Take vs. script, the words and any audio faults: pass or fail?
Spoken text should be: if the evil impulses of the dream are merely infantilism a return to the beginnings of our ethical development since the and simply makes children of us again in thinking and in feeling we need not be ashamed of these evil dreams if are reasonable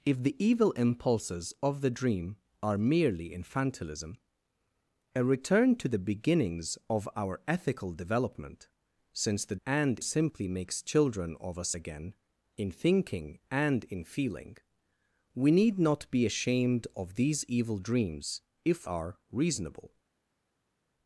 pass